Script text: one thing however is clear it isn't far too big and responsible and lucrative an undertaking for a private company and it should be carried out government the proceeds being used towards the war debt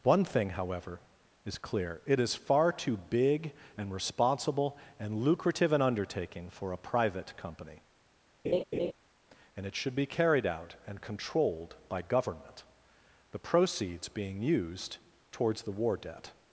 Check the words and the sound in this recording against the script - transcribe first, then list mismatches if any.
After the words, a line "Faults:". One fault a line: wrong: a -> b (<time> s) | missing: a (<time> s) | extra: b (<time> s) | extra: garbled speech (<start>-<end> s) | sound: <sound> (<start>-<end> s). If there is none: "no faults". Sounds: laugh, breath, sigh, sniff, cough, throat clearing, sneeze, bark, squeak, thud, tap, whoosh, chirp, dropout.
one thing however is clear it is far too big and responsible and lucrative an undertaking for a private company and it should be carried out and controlled by government the proceeds being used towards the war debt
Faults:
wrong: isn't -> is (2.2 s)
sound: laugh (8.4-8.9 s)
extra: and controlled by (10.8 s)